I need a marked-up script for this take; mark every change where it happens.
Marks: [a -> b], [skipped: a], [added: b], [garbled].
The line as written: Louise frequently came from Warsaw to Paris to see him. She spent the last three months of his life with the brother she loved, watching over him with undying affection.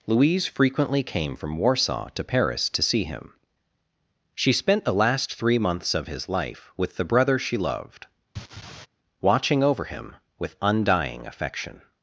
Louise frequently came from Warsaw to Paris to see him. She spent the last three months of his life with the brother she loved, watching over him with undying affection.